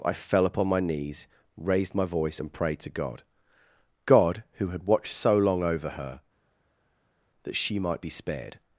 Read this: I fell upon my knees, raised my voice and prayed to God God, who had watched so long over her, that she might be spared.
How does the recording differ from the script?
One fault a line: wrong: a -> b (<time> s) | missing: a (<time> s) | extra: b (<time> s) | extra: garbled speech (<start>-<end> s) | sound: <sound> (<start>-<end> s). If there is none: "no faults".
no faults